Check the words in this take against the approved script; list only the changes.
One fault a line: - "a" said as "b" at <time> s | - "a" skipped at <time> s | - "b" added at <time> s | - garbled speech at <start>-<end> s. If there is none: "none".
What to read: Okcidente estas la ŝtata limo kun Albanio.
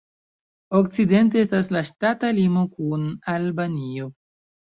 none